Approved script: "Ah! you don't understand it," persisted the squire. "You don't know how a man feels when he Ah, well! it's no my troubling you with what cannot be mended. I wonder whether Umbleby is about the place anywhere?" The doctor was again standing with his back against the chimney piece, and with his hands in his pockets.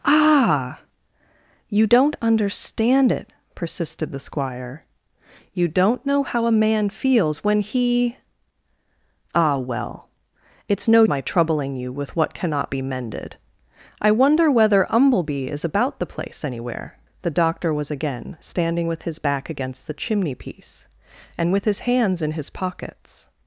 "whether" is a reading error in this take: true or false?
false